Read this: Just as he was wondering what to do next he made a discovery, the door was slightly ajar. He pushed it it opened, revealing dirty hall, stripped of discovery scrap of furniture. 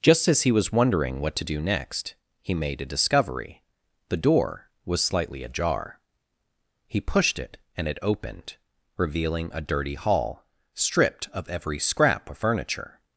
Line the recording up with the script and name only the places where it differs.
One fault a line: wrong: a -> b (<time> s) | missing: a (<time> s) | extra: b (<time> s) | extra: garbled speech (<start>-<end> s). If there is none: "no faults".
extra: and (7.8 s)
extra: a (9.5 s)
wrong: discovery -> every (11.5 s)